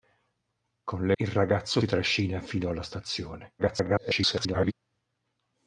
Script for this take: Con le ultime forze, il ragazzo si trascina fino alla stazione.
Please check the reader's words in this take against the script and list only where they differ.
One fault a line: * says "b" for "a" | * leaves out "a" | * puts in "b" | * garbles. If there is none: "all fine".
* leaves out "ultime forze"
* leaves out "si"
* garbles